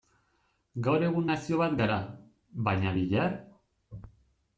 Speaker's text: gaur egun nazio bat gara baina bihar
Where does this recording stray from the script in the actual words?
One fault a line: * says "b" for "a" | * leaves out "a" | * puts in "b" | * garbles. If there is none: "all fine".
all fine